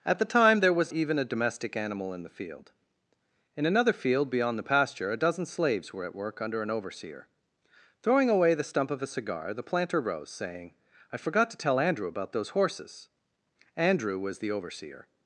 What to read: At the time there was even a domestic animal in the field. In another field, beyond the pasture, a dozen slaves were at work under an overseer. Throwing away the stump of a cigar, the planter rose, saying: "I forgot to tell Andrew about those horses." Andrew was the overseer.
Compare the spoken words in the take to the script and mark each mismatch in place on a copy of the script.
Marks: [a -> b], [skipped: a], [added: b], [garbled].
At the time there was even a domestic animal in the field. In another field, beyond the pasture, a dozen slaves were at work under an overseer. Throwing away the stump of a cigar, the planter rose, saying: "I forgot to tell Andrew about those horses." Andrew was the overseer.